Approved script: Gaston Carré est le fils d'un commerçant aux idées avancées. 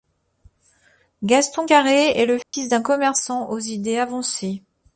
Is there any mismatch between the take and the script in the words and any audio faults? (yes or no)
yes